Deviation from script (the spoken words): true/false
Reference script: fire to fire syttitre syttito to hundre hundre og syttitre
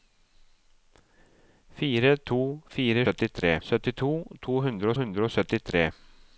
false